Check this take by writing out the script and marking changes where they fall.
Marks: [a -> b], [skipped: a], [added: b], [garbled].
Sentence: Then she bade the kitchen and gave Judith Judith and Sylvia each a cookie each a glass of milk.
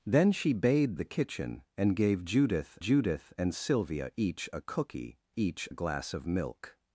Then she bade the kitchen and gave Judith Judith and Sylvia each a cookie each a glass of milk.